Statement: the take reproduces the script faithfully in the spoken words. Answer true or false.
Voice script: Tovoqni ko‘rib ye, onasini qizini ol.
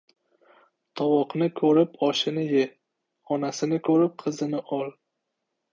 false